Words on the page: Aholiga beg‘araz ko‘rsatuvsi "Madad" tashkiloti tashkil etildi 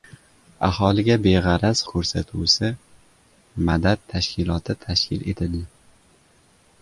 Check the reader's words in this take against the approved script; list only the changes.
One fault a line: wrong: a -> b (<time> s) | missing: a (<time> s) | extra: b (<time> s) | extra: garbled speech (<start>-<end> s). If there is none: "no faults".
no faults